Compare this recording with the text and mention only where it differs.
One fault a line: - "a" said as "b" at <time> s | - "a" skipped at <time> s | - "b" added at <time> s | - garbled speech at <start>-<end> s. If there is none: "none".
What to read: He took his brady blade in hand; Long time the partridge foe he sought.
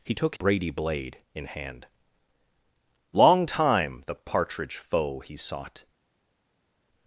- "his" skipped at 0.3 s